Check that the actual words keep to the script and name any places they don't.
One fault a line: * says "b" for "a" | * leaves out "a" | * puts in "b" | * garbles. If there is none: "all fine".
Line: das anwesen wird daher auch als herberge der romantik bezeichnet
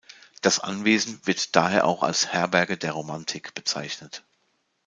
all fine